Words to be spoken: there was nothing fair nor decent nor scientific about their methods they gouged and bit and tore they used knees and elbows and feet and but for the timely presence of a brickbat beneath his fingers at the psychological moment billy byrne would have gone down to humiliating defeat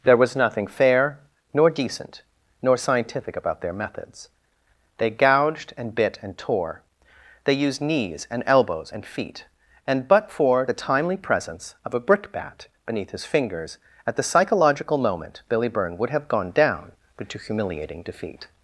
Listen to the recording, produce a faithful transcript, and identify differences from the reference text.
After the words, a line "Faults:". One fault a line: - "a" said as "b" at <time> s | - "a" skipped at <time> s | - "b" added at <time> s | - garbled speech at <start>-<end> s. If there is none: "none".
there was nothing fair nor decent nor scientific about their methods they gouged and bit and tore they used knees and elbows and feet and but for the timely presence of a brickbat beneath his fingers at the psychological moment billy byrne would have gone down but to humiliating defeat
Faults:
- "but" added at 17.2 s